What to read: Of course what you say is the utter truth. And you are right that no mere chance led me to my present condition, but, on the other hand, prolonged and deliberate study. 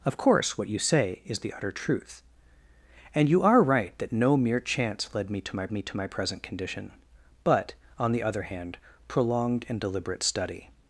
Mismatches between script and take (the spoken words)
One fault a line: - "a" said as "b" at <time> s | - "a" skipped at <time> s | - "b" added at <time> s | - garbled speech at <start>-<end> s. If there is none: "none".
- "me to my" added at 5.7 s